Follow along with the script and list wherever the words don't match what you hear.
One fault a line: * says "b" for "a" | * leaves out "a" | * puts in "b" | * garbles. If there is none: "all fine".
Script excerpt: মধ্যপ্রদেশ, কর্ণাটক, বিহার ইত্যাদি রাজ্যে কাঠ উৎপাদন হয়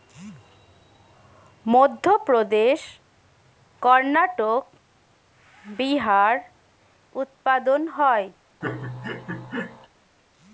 * leaves out "ইত্যাদি রাজ্যে কাঠ"